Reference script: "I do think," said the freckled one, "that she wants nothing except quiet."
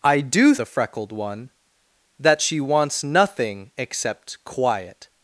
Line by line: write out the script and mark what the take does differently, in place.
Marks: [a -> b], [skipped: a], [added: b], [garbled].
"I do [skipped: think," said] the freckled one, "that she wants nothing except quiet."